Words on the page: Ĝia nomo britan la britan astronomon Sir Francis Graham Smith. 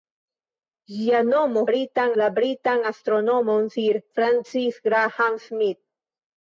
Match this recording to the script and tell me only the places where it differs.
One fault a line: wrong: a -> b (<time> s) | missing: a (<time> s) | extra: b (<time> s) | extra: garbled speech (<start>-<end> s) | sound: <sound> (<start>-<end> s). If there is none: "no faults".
no faults